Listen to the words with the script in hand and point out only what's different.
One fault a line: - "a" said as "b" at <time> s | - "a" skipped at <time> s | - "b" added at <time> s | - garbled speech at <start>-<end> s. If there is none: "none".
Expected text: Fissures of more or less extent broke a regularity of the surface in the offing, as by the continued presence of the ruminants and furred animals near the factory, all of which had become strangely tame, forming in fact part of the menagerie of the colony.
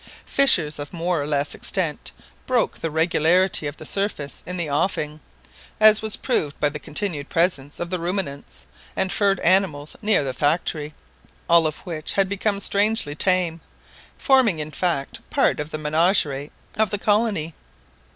- "a" said as "the" at 2.8 s
- "was proved" added at 6.0 s